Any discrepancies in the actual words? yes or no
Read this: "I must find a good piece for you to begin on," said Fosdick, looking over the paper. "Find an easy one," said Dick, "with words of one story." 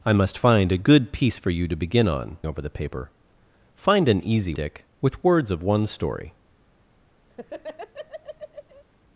yes